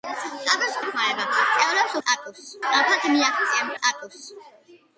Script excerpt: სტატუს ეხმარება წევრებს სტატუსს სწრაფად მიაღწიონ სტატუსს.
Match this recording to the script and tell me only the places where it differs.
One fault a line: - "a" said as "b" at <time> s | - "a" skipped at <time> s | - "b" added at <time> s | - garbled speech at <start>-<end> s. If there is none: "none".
none